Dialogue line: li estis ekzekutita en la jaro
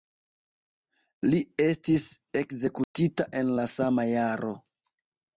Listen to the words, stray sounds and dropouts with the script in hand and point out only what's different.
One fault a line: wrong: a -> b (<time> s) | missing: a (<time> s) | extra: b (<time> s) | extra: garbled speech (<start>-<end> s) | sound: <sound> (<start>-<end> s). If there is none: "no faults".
sound: dropout (2.8-2.9 s)
extra: sama (3.7 s)